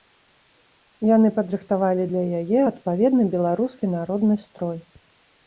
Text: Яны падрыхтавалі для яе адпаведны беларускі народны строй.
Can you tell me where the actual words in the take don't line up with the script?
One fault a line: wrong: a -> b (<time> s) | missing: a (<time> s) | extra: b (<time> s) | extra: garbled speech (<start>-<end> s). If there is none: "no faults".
no faults